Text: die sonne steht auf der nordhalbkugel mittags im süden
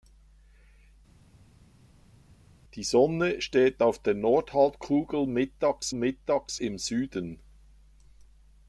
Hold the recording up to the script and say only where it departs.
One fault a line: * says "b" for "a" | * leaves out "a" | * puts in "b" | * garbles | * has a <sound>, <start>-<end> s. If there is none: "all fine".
* puts in "mittags"